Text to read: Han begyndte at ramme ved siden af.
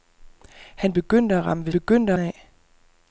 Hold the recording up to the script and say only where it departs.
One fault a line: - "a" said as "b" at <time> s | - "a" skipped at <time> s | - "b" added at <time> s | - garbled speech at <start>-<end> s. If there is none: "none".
- "siden" said as "begyndte" at 1.7 s